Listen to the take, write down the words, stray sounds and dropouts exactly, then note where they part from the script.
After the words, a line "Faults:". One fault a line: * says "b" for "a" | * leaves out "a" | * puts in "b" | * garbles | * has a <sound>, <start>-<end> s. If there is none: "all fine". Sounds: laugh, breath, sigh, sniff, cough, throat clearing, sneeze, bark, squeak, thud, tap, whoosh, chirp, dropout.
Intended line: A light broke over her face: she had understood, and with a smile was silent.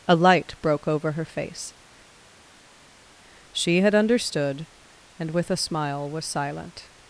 A light broke over her face: she had understood, and with a smile was silent.
Faults:
all fine